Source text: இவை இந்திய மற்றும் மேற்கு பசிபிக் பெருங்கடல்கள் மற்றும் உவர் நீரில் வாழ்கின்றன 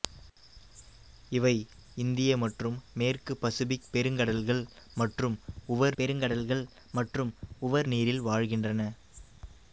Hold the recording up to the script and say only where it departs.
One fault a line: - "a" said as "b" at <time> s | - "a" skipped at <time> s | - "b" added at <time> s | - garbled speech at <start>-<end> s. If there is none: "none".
- "பெருங்கடல்கள் மற்றும் உவர்" added at 6.0 s